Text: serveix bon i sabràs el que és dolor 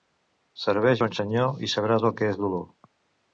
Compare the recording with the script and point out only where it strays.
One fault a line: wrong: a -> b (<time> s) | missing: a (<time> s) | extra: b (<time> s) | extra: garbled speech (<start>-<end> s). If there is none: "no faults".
extra: senyor (1.2 s)